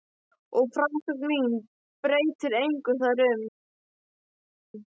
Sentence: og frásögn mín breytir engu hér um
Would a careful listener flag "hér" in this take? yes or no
yes